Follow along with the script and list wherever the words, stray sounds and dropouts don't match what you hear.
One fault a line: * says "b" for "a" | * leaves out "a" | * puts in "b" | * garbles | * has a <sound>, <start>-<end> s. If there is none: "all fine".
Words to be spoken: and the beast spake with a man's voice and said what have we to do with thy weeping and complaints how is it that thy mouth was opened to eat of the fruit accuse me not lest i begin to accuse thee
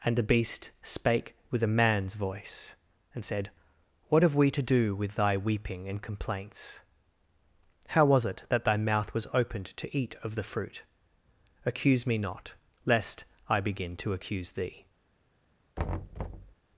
* says "was" for "is"
* has a thud, 15.8-16.5 s